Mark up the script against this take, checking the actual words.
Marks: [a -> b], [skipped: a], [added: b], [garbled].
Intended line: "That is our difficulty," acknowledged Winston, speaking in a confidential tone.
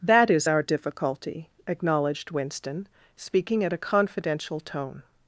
"That is our difficulty," acknowledged Winston, speaking [in -> at] a confidential tone.